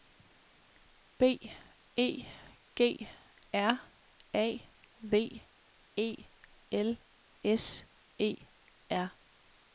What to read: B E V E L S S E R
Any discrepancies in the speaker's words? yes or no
yes